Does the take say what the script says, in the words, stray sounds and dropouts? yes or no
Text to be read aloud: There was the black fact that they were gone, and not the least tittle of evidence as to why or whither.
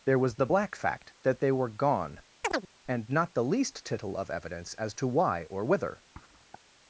no